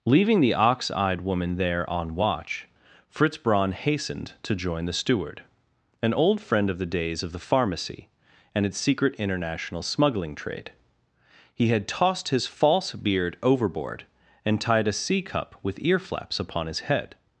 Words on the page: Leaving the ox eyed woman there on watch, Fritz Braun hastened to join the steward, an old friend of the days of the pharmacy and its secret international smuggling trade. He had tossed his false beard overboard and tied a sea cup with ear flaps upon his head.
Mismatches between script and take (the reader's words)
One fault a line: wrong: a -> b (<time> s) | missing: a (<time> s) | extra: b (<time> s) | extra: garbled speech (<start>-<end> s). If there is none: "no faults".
no faults